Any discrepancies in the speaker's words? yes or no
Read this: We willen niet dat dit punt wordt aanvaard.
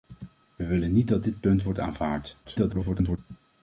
yes